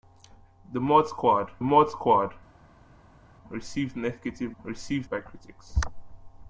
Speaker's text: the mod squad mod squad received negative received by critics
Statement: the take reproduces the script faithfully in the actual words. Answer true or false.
true